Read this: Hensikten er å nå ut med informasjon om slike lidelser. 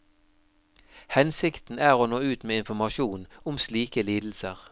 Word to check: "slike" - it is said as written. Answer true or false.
true